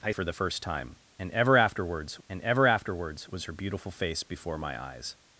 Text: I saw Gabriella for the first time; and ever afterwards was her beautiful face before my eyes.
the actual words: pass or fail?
fail